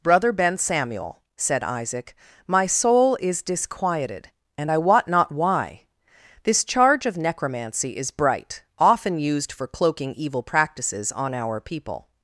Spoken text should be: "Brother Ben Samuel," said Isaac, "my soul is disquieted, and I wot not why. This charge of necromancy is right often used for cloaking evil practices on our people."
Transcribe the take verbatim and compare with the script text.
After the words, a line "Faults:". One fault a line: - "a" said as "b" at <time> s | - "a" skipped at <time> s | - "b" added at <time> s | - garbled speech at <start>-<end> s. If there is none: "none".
"Brother Ben Samuel," said Isaac, "my soul is disquieted, and I wot not why. This charge of necromancy is bright often used for cloaking evil practices on our people."
Faults:
- "right" said as "bright" at 8.1 s